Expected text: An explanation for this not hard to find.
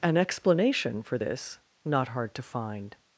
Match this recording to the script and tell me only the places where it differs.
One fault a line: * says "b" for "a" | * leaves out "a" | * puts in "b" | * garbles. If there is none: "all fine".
all fine